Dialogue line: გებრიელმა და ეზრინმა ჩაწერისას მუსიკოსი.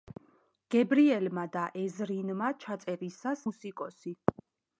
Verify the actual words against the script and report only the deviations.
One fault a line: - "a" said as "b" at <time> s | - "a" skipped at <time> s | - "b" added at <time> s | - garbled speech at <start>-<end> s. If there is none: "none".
none